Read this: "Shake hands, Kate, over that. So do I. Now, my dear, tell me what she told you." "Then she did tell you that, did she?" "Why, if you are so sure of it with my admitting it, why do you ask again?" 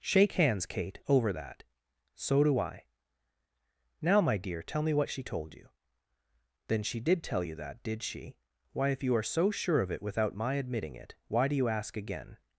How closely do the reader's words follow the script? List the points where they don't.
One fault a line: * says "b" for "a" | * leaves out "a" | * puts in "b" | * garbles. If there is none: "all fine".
* says "without" for "with"